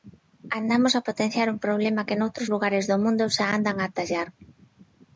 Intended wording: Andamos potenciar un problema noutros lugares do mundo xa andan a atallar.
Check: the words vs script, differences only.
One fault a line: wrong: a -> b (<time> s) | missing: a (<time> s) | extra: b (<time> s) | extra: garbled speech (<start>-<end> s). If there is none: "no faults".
extra: a (0.9 s)
extra: que (2.1 s)